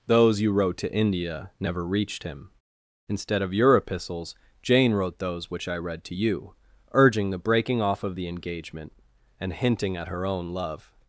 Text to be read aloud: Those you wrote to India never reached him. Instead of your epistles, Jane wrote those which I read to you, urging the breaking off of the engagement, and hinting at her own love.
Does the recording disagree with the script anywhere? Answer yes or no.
no